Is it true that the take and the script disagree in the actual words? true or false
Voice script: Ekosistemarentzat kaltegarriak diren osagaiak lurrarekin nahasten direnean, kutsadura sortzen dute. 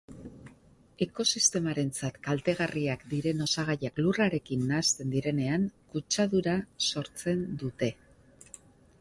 false